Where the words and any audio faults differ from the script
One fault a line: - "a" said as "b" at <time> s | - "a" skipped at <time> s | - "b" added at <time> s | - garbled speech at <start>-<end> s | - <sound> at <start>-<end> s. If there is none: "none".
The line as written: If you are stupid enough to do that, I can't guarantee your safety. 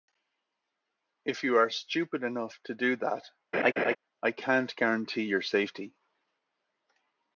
- laugh at 3.5-4.0 s